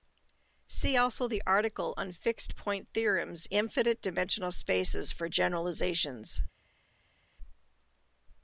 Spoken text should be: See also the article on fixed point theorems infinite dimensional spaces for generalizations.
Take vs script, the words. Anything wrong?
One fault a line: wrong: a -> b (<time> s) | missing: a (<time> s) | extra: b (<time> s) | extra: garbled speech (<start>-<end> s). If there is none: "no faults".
no faults